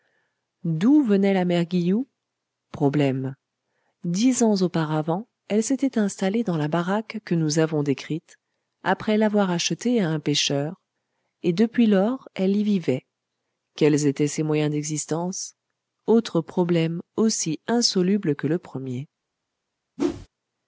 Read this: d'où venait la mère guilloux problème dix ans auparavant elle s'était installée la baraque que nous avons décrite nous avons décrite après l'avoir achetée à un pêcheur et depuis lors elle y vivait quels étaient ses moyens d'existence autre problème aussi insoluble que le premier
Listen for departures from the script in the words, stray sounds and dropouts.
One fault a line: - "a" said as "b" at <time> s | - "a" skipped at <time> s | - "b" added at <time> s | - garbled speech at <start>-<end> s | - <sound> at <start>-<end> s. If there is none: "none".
- "dans" added at 6.4 s
- "nous avons décrite" skipped at 8.4 s
- whoosh at 20.0-20.3 s